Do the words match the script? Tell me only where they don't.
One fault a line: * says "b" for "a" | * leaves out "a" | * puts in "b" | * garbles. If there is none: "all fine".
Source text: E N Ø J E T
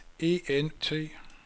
* leaves out "Ø J E"